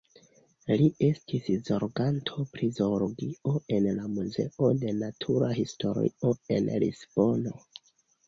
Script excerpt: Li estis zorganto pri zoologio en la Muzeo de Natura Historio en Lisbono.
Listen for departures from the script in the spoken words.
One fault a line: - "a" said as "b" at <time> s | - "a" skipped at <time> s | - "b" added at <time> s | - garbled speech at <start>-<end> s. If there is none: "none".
none